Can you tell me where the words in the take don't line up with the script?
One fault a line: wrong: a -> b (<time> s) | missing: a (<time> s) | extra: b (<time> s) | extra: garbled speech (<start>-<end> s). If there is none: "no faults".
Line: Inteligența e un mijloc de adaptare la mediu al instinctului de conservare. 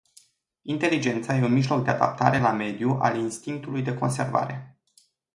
no faults